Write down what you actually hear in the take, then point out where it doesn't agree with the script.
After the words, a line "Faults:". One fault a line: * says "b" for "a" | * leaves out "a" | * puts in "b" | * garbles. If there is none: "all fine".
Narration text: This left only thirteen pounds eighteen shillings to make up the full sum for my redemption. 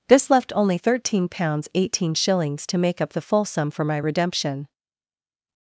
This left only thirteen pounds eighteen shillings to make up the full sum for my redemption.
Faults:
all fine